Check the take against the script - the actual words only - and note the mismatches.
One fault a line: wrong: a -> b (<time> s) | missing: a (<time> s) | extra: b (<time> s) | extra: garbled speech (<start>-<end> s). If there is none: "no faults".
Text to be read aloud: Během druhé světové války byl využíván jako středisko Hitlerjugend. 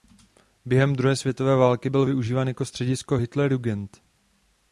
no faults